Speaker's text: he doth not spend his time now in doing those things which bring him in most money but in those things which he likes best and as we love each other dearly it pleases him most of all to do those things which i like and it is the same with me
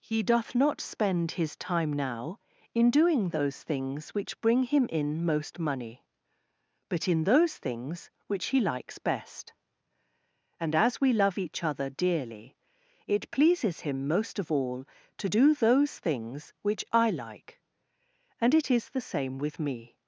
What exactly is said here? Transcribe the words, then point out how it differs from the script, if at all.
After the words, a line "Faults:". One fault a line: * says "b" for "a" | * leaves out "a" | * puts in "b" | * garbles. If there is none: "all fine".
he doth not spend his time now in doing those things which bring him in most money but in those things which he likes best and as we love each other dearly it pleases him most of all to do those things which i like and it is the same with me
Faults:
all fine